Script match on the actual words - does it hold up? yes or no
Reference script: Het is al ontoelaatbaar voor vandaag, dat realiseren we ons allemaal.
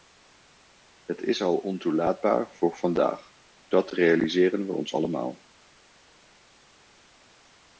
yes